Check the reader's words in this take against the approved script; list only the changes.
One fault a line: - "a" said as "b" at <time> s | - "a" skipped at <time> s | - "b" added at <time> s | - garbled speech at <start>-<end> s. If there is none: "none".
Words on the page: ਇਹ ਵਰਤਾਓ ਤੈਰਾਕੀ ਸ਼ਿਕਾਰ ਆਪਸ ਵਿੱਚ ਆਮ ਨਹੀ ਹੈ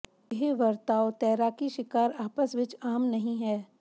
none